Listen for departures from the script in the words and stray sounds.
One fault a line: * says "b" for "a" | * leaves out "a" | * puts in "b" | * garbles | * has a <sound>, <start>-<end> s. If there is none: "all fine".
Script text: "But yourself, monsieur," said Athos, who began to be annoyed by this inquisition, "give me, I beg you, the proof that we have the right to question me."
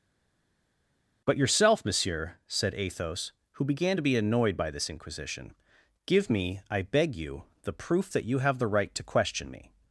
* says "you" for "we"